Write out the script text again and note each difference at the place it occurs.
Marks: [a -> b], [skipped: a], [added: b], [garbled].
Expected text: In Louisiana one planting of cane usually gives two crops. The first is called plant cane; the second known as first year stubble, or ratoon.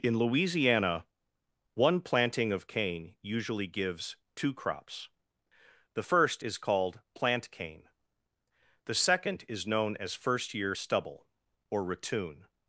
In Louisiana one planting of cane usually gives two crops. The first is called plant cane; the second [added: is] known as first year stubble, or ratoon.